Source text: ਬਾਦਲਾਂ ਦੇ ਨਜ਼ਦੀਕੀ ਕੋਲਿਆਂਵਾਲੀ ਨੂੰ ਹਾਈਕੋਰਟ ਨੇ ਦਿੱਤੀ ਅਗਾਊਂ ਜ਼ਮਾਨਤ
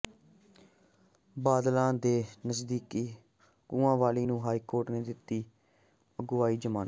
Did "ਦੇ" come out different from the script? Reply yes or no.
no